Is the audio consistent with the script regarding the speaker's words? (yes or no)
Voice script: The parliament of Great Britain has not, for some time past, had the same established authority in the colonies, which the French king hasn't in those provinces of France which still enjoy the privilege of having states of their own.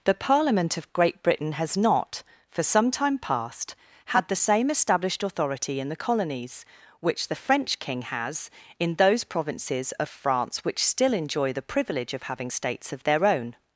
no